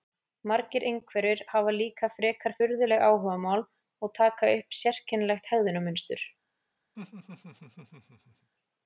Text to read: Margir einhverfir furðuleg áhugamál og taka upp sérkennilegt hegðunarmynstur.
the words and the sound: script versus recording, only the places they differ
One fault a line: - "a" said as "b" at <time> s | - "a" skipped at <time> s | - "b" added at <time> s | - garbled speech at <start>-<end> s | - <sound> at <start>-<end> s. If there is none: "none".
- "hafa líka frekar" added at 1.5 s
- laugh at 7.0-8.5 s